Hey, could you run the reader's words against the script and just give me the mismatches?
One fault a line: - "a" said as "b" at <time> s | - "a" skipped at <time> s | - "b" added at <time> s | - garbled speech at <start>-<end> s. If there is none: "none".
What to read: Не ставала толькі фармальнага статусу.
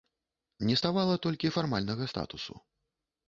none